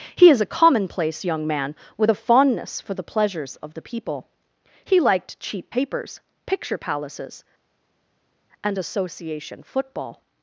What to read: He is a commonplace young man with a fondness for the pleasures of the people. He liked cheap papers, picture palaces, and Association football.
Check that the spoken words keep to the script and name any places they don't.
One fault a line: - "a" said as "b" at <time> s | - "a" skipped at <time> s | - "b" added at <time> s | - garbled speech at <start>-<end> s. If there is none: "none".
none